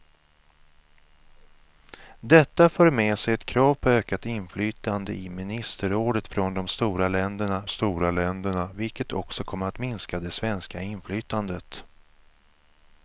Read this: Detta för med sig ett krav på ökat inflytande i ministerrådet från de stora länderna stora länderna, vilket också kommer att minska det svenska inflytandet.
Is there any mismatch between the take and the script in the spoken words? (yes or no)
no